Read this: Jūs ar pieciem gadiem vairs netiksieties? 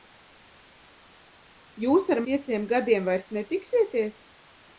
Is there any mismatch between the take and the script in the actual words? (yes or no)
no